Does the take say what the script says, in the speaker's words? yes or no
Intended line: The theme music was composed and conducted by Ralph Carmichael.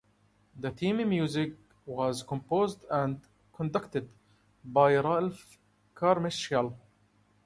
yes